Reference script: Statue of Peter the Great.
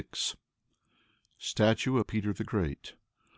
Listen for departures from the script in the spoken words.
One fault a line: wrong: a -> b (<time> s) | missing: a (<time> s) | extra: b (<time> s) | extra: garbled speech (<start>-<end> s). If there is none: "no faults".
no faults